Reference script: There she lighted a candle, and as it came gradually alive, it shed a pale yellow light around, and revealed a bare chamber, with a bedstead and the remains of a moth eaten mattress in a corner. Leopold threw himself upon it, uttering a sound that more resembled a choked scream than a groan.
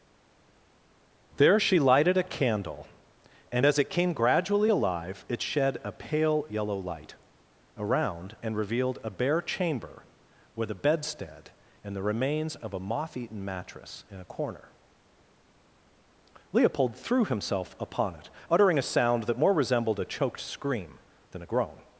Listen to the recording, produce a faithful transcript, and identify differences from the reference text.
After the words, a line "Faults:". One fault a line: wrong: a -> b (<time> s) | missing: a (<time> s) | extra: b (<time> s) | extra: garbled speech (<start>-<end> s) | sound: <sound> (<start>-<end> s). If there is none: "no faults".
There she lighted a candle, and as it came gradually alive, it shed a pale yellow light around, and revealed a bare chamber, with a bedstead and the remains of a moth eaten mattress in a corner. Leopold threw himself upon it, uttering a sound that more resembled a choked scream than a groan.
Faults:
no faults